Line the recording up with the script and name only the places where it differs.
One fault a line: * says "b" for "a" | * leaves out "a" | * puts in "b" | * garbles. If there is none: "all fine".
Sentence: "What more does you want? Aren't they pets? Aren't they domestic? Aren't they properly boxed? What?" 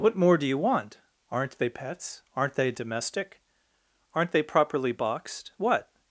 * says "do" for "does"